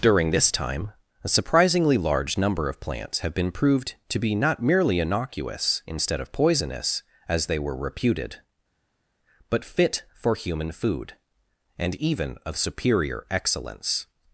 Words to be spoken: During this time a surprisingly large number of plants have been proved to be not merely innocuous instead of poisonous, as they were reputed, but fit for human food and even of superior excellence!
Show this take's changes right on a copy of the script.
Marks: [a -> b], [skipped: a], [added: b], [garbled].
During this time a surprisingly large number of plants have been proved to be not merely innocuous instead of poisonous, as they were reputed, but fit for human food and even of superior excellence!